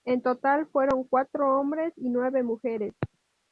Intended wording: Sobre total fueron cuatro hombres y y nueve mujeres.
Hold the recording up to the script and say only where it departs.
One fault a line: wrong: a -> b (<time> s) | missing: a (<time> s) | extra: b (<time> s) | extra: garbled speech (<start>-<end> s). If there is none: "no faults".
wrong: Sobre -> En (0.1 s)
missing: y (2.1 s)